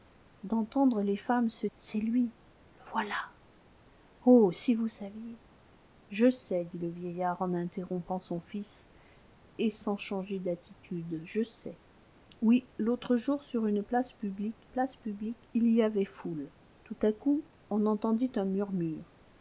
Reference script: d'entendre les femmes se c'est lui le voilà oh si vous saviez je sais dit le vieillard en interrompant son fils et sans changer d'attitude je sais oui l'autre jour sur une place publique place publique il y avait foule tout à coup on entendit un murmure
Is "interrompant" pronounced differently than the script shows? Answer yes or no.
no